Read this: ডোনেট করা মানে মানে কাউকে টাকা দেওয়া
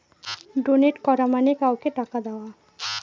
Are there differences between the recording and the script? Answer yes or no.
yes